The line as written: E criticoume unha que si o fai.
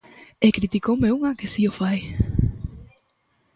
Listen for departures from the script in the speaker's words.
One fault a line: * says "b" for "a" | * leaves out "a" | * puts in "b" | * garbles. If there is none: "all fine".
all fine